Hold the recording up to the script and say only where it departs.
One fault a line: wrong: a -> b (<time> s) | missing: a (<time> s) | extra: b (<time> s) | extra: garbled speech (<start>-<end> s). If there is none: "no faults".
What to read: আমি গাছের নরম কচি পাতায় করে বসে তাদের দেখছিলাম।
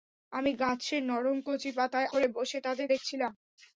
no faults